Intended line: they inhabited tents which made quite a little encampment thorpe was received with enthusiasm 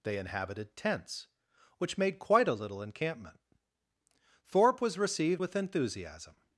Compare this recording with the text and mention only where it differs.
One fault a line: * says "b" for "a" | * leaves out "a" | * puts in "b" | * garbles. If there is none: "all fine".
all fine